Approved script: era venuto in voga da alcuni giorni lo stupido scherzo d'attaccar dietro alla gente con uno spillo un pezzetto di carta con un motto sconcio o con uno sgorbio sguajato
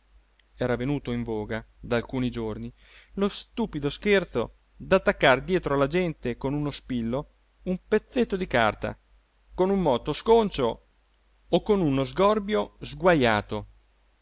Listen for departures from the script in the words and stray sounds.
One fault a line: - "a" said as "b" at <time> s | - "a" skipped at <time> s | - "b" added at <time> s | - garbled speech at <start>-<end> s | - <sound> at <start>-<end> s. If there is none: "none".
none